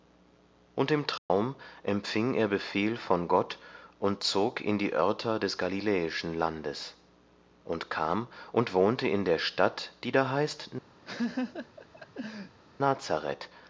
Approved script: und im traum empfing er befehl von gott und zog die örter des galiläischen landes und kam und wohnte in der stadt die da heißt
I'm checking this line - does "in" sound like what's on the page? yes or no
yes